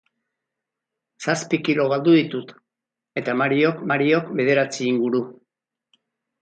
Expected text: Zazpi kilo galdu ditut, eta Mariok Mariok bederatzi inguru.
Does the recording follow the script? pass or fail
pass